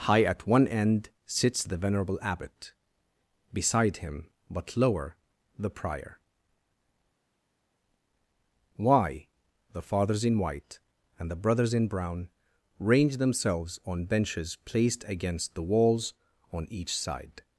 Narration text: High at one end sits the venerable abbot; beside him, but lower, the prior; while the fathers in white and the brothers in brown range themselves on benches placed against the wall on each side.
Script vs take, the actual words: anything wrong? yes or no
yes